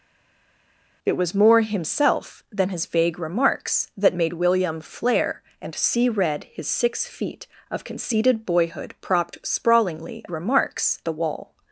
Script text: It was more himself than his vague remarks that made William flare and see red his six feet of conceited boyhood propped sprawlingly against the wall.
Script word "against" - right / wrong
wrong